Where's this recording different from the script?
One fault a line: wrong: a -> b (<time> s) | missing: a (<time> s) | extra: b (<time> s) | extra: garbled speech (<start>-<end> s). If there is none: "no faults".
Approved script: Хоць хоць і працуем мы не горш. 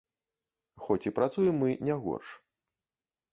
missing: хоць (1.1 s)